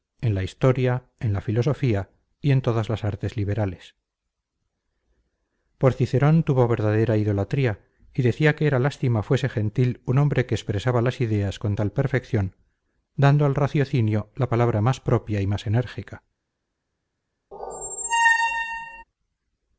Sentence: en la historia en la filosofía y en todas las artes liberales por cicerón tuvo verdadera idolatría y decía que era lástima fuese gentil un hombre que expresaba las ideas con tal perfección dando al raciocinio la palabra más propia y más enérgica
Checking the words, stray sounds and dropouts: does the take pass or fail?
fail